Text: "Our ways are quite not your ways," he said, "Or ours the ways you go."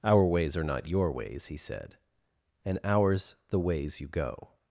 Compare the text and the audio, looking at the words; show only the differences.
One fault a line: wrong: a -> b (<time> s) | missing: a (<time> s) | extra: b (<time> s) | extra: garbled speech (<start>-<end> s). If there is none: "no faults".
missing: quite (0.6 s)
wrong: Or -> And (2.6 s)